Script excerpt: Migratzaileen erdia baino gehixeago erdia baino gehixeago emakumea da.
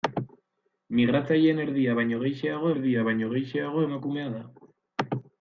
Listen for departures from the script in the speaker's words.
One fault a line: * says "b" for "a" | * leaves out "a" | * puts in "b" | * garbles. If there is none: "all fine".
all fine